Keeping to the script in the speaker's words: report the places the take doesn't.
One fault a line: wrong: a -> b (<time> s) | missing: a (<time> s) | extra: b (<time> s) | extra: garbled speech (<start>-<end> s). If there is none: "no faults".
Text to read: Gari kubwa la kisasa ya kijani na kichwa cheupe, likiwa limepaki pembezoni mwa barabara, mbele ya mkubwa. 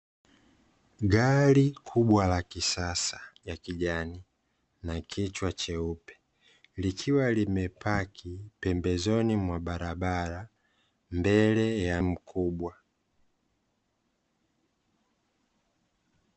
no faults